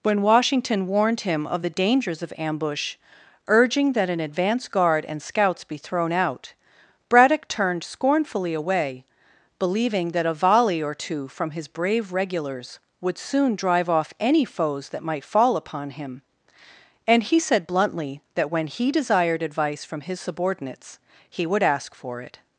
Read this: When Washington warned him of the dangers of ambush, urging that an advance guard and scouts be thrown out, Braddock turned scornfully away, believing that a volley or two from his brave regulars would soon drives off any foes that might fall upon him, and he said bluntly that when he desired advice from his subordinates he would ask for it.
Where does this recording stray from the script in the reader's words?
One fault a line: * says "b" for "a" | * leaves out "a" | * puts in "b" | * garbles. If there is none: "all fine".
* says "drive" for "drives"